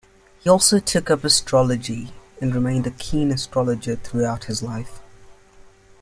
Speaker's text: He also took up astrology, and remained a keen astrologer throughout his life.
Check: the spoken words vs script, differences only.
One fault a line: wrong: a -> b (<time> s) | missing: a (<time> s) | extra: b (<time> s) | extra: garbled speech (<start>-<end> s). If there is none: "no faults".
no faults